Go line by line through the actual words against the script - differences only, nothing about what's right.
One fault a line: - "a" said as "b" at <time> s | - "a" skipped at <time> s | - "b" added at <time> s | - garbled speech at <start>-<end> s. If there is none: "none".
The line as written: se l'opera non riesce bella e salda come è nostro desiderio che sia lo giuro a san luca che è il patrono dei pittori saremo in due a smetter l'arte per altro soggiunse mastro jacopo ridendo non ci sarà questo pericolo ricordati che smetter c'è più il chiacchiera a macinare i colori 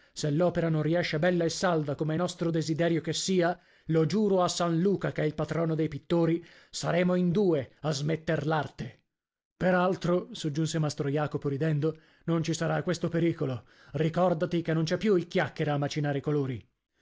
- "smetter" said as "non" at 14.7 s